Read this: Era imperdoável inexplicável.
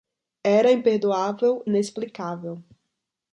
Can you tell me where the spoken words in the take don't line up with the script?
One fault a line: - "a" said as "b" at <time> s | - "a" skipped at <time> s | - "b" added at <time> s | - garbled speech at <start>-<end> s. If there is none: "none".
none